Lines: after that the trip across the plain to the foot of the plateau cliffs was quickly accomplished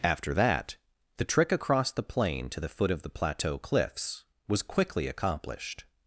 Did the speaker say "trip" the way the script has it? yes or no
no